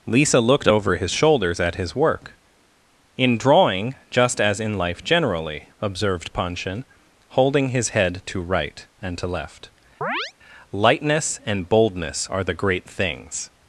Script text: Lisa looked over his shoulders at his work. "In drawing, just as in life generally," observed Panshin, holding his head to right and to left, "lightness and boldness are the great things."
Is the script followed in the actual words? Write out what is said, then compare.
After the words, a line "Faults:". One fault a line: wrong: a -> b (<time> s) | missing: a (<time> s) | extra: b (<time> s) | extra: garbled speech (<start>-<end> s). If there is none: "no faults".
Lisa looked over his shoulders at his work. "In drawing, just as in life generally," observed Panshin, holding his head to right and to left, "lightness and boldness are the great things."
Faults:
no faults